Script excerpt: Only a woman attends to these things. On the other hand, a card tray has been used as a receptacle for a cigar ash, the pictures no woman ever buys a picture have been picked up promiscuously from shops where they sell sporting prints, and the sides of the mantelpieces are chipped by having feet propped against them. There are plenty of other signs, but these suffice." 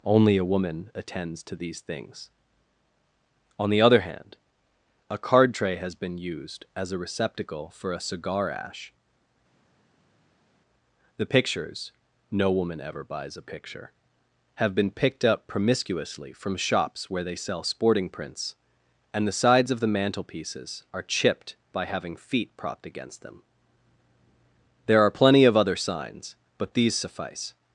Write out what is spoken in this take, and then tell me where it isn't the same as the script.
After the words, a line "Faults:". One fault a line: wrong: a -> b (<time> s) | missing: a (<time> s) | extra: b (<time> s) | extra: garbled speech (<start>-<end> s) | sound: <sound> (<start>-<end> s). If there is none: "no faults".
Only a woman attends to these things. On the other hand, a card tray has been used as a receptacle for a cigar ash, the pictures no woman ever buys a picture have been picked up promiscuously from shops where they sell sporting prints, and the sides of the mantelpieces are chipped by having feet propped against them. There are plenty of other signs, but these suffice."
Faults:
no faults